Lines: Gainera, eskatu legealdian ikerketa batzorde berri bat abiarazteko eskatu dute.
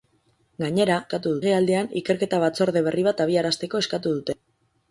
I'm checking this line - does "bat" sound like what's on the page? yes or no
yes